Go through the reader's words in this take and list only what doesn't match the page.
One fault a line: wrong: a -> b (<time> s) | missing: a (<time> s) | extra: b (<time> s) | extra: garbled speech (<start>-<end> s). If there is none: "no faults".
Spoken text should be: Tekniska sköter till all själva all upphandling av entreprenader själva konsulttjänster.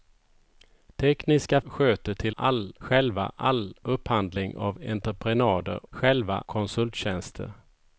no faults